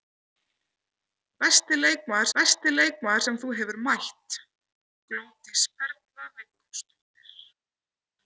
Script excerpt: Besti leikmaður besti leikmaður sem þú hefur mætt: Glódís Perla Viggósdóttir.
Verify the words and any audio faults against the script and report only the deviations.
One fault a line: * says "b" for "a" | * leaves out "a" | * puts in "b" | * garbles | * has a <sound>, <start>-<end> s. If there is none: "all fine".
all fine